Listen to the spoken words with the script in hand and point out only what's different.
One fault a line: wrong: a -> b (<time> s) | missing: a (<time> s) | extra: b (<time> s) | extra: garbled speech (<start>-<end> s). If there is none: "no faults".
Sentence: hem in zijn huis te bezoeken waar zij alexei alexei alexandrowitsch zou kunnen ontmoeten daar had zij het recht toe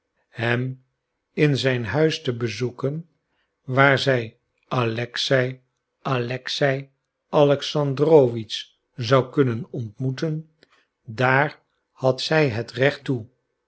no faults